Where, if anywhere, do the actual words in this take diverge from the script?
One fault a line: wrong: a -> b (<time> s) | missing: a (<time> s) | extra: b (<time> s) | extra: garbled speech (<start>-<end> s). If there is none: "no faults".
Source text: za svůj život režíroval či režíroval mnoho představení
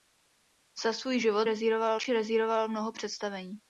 no faults